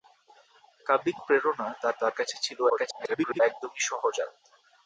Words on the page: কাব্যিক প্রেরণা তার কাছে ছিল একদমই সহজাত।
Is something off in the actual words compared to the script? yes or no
yes